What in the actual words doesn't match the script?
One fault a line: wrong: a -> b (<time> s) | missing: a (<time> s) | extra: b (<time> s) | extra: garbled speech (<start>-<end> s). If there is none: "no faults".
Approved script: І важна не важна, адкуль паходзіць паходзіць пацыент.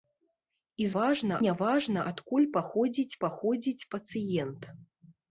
no faults